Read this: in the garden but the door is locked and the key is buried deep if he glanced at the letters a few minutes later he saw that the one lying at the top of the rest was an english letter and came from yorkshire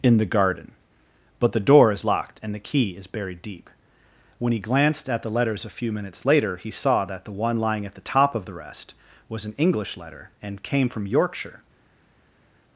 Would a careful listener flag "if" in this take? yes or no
yes